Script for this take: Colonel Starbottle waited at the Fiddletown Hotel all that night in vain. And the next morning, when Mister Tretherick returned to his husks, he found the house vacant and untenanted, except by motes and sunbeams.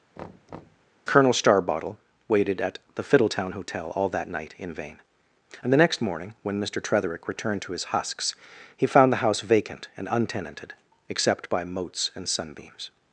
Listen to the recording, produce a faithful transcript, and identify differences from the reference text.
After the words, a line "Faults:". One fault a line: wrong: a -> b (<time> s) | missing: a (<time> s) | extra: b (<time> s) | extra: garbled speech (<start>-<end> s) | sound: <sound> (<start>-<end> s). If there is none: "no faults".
Colonel Starbottle waited at the Fiddletown Hotel all that night in vain. And the next morning, when Mister Tretherick returned to his husks, he found the house vacant and untenanted, except by motes and sunbeams.
Faults:
sound: thud (0.2-0.9 s)